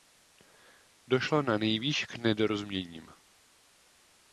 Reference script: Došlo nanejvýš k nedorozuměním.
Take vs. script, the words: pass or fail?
pass